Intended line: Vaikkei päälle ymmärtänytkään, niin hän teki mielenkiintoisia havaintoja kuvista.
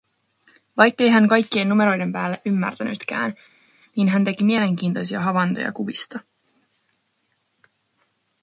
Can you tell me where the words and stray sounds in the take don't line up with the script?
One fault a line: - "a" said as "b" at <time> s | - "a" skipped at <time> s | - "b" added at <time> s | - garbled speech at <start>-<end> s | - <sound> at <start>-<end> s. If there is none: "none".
- "hän kaikkien numeroiden" added at 1.1 s